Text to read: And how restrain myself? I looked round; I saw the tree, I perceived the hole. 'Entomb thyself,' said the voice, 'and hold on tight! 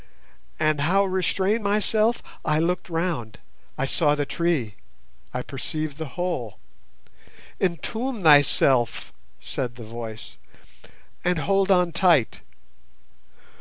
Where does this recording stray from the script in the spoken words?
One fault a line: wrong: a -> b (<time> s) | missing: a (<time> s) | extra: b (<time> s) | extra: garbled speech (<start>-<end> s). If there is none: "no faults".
no faults